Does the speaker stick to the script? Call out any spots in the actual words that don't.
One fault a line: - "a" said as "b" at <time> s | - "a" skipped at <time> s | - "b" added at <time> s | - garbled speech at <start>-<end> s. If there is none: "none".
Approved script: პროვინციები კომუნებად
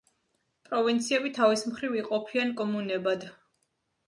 - "თავის მხრივ იყოფიან" added at 1.4 s